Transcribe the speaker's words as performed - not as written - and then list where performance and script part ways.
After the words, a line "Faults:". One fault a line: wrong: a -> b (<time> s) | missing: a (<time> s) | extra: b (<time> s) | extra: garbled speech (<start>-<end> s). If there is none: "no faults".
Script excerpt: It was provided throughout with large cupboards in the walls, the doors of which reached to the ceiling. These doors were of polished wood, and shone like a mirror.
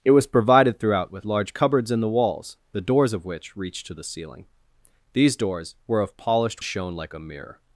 It was provided throughout with large cupboards in the walls, the doors of which reached to the ceiling. These doors were of polished shone like a mirror.
Faults:
missing: wood and (6.6 s)